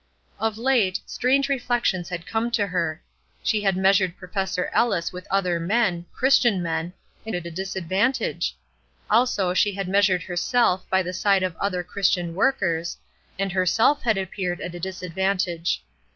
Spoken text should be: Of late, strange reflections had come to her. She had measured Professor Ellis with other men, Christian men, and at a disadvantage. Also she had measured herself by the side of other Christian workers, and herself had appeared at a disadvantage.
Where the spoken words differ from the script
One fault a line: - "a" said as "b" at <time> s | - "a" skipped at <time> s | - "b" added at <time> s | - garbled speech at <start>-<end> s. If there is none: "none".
none